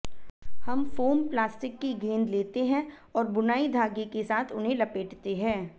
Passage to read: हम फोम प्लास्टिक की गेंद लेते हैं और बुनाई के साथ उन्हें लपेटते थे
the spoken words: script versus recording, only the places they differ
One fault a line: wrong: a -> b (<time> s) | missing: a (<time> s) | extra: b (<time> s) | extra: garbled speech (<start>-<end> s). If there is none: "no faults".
extra: धागे (3.7 s)
wrong: थे -> हैं (5.4 s)